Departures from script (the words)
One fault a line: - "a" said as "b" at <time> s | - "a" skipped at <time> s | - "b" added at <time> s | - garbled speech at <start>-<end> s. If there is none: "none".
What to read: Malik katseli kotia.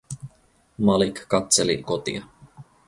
none